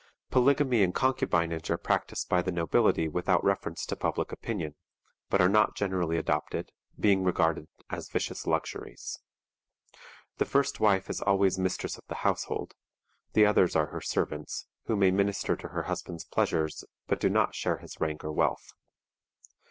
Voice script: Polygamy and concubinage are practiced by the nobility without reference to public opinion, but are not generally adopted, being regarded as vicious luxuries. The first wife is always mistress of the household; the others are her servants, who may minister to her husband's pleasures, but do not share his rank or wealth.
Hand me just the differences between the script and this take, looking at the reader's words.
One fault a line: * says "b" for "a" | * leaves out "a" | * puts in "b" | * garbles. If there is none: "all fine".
all fine